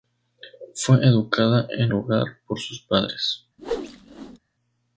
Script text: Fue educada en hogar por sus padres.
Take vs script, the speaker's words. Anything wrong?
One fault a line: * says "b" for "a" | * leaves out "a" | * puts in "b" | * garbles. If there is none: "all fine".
all fine